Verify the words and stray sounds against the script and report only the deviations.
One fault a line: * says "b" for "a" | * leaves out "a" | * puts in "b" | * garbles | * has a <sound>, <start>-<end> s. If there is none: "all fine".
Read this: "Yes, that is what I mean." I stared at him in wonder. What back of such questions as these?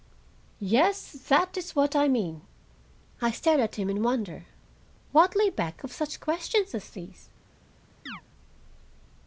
* puts in "lay"
* has a chirp, 8.1-8.2 s